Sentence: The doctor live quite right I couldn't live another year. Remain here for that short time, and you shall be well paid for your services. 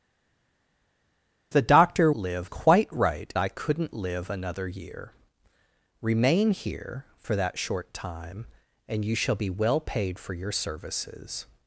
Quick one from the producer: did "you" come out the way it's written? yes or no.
yes